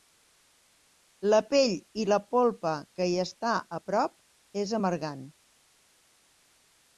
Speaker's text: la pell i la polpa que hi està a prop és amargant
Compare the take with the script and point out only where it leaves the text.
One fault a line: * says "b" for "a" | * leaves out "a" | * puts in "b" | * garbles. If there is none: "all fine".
all fine